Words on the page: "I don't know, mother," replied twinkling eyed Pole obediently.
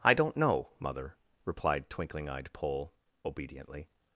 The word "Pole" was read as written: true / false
true